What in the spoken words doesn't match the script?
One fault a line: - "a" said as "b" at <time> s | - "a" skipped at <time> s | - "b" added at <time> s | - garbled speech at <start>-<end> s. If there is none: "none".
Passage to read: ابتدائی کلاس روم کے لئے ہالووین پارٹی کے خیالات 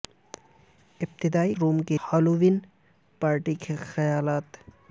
- "کلاس" skipped at 1.5 s
- "لئے" skipped at 2.0 s